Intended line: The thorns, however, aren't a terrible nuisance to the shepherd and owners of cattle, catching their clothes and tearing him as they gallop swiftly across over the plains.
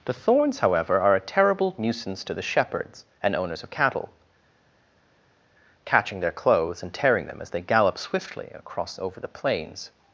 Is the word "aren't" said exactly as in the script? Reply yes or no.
no